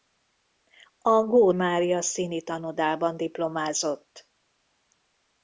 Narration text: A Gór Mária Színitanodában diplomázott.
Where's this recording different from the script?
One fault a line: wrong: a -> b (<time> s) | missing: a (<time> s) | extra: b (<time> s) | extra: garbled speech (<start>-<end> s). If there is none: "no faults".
no faults